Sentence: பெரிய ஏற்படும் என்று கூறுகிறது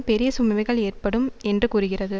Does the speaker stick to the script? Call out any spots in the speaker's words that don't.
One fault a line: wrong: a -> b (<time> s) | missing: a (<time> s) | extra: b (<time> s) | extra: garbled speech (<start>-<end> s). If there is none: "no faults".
extra: சுமைகள் (0.4 s)